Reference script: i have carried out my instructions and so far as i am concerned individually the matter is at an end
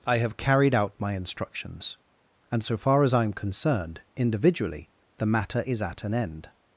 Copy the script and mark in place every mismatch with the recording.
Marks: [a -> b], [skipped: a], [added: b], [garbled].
i have carried out my instructions and so far as i am concerned individually the matter is at an end